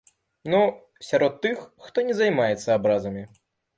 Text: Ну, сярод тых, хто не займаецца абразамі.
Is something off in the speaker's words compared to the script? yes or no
no